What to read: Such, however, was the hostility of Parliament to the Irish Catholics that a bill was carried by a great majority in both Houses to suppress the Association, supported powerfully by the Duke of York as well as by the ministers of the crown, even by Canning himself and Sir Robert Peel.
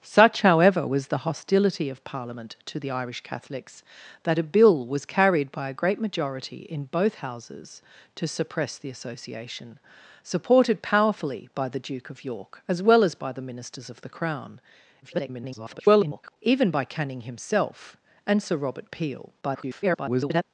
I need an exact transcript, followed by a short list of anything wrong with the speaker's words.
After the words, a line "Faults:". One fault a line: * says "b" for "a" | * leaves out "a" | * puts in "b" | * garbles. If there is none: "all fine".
Such, however, was the hostility of Parliament to the Irish Catholics that a bill was carried by a great majority in both Houses to suppress the Association, supported powerfully by the Duke of York as well as by the ministers of the crown, [garbled] even by Canning himself and Sir Robert Peel. [garbled]
Faults:
* garbles
* garbles